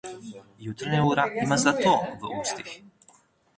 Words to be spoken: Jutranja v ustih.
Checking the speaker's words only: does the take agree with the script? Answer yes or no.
no